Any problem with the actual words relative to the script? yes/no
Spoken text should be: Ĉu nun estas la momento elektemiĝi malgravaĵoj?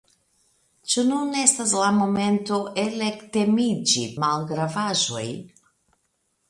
no